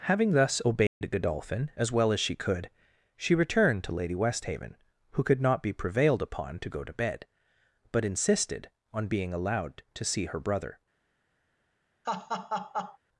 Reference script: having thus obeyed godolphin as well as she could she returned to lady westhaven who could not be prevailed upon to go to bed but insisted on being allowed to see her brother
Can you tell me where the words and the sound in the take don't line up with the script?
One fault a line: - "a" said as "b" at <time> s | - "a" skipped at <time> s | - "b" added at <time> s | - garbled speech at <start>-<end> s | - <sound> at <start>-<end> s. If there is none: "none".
- dropout at 0.9-1.0 s
- laugh at 12.0-13.0 s